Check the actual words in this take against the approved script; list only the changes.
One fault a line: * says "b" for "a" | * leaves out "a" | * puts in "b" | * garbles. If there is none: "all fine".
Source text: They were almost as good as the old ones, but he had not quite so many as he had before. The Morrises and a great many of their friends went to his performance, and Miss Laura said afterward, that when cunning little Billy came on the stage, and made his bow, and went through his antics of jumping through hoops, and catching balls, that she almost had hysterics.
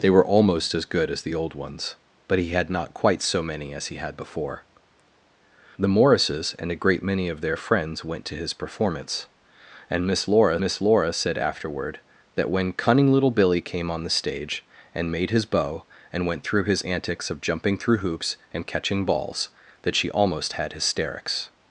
* puts in "Miss Laura"